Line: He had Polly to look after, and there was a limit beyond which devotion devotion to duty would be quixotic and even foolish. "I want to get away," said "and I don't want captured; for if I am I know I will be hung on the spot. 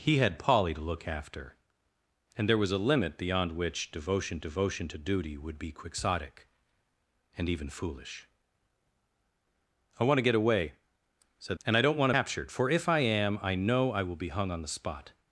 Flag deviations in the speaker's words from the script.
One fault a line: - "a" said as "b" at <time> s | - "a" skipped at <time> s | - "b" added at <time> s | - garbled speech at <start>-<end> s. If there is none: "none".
none